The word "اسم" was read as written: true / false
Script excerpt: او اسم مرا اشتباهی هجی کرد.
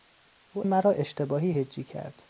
false